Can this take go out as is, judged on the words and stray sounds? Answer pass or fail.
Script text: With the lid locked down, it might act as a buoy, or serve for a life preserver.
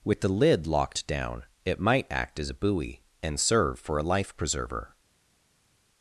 fail